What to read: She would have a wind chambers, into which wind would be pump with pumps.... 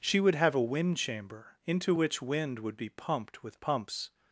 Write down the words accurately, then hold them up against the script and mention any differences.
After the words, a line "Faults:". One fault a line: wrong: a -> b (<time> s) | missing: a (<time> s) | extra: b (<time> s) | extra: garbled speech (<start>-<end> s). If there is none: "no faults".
She would have a wind chamber, into which wind would be pumped with pumps....
Faults:
wrong: chambers -> chamber (1.0 s)
wrong: pump -> pumped (2.9 s)